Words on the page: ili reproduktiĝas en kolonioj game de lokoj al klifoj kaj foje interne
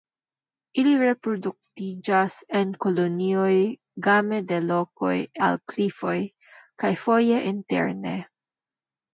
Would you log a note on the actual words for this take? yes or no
no